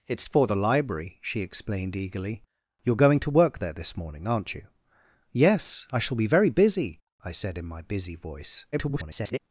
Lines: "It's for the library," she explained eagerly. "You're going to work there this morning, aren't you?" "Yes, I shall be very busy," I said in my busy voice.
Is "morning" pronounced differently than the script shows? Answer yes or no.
no